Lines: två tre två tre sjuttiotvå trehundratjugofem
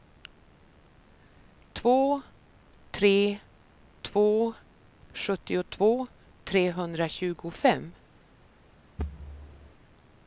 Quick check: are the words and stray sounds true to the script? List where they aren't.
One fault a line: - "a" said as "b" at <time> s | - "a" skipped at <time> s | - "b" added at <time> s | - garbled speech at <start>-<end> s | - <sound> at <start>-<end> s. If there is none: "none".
- "tre" skipped at 4.5 s
- thud at 9.0-9.8 s